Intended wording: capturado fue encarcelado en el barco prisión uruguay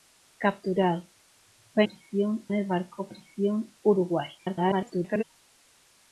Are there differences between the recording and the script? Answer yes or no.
yes